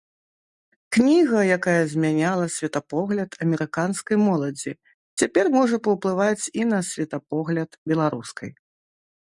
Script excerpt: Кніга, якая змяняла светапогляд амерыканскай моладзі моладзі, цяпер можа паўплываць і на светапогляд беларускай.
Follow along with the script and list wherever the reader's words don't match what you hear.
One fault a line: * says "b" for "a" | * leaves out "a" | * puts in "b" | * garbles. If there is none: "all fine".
* leaves out "моладзі"